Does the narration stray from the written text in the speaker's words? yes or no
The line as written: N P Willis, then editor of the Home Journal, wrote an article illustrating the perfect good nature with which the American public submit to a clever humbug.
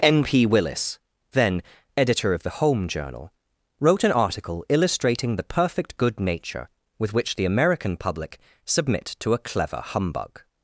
no